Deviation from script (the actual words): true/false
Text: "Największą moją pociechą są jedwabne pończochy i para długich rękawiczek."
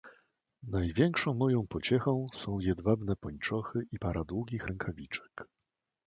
false